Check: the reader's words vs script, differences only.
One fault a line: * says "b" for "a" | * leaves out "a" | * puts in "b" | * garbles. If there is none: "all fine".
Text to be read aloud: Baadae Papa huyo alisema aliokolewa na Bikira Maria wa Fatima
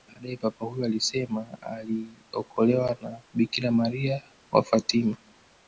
all fine